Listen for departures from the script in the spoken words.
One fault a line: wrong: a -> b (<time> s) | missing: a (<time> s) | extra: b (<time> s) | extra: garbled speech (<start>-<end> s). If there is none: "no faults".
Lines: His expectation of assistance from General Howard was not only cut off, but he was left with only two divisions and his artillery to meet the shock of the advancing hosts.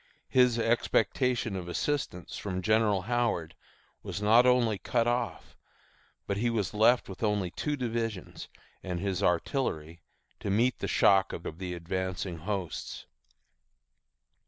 extra: of (11.5 s)